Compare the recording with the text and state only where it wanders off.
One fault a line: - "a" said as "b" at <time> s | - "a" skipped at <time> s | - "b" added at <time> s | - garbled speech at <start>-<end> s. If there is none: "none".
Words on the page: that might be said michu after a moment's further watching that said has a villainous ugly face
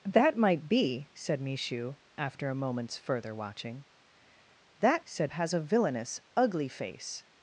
none